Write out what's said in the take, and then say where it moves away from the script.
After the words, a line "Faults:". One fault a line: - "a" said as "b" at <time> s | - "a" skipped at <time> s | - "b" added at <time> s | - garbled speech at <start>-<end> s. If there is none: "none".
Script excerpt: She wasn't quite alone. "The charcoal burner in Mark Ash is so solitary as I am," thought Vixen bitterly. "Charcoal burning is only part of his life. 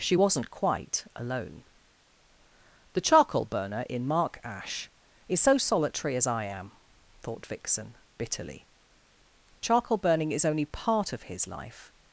She wasn't quite alone. "The charcoal burner in Mark Ash is so solitary as I am," thought Vixen bitterly. "Charcoal burning is only part of his life.
Faults:
none